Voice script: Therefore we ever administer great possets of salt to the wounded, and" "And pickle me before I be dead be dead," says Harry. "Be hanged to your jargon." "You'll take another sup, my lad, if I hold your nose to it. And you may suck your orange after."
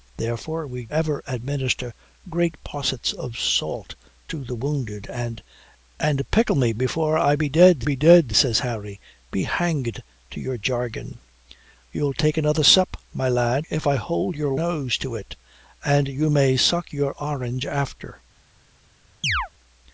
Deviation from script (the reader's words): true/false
false